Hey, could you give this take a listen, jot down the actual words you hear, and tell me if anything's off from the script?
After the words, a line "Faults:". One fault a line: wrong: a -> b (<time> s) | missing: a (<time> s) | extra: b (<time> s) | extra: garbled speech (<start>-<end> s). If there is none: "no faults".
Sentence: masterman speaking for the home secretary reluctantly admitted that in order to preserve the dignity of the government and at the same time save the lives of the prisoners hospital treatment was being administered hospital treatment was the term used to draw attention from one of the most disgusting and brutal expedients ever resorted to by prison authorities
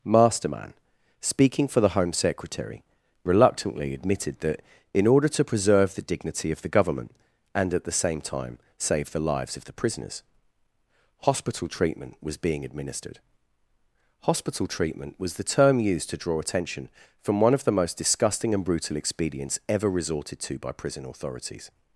masterman speaking for the home secretary reluctantly admitted that in order to preserve the dignity of the government and at the same time save the lives of the prisoners hospital treatment was being administered hospital treatment was the term used to draw attention from one of the most disgusting and brutal expedients ever resorted to by prison authorities
Faults:
no faults